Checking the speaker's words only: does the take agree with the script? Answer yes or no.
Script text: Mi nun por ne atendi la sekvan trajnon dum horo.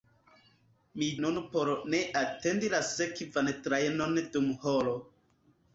yes